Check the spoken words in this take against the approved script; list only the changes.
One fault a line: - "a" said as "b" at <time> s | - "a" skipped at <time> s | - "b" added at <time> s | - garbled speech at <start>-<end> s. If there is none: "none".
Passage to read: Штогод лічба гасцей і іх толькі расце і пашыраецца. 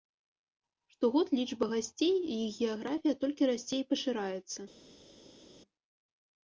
- "геаграфія" added at 2.6 s